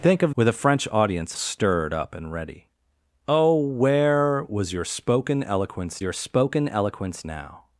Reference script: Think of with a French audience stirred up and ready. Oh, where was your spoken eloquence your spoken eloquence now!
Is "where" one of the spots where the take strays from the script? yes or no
no